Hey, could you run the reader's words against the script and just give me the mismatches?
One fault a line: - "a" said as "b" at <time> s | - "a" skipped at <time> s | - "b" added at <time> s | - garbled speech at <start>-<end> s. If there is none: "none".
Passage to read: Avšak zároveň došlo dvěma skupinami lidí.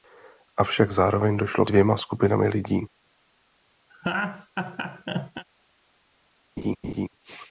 none